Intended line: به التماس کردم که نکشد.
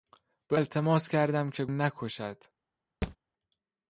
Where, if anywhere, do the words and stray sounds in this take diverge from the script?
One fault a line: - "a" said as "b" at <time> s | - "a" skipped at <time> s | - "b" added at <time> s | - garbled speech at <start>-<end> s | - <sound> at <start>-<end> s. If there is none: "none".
- thud at 3.0-3.2 s